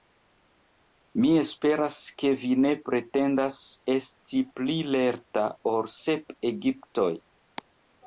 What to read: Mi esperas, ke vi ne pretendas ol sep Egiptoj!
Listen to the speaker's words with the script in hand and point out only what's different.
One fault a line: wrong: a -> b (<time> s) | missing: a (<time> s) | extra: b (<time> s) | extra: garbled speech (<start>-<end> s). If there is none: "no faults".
extra: esti pli lerta (4.0 s)